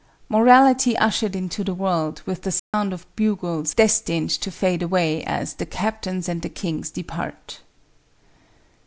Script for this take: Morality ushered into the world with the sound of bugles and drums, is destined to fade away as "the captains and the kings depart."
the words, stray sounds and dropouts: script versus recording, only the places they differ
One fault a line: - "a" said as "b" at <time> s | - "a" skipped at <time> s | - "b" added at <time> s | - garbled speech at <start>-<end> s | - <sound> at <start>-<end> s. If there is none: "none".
- dropout at 2.6-2.7 s
- "and drums is" skipped at 3.7 s